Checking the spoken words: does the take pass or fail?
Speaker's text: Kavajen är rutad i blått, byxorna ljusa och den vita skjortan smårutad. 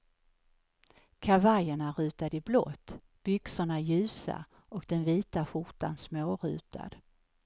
pass